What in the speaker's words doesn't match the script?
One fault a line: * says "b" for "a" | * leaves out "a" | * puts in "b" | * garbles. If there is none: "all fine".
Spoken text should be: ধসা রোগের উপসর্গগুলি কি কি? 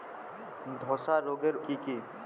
* leaves out "উপসর্গগুলি"